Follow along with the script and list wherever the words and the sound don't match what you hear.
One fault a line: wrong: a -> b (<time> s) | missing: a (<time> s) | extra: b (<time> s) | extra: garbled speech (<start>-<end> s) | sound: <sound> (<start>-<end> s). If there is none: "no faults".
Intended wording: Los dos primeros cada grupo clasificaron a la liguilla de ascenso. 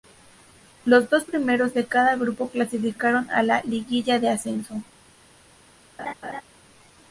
extra: de (1.8 s)
sound: laugh (6.0-6.4 s)